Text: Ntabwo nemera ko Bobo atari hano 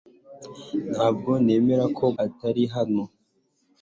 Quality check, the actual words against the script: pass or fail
fail